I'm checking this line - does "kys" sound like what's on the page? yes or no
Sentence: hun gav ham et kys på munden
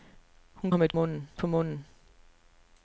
no